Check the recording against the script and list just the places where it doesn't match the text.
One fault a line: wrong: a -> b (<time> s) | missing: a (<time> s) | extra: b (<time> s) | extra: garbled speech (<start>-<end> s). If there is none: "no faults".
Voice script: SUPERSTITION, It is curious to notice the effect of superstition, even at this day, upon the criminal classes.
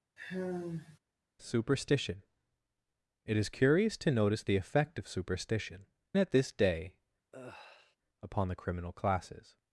missing: even (5.9 s)